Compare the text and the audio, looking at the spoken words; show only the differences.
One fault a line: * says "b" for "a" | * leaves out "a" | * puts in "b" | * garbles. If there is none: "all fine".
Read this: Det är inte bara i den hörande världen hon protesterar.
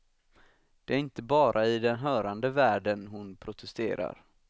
all fine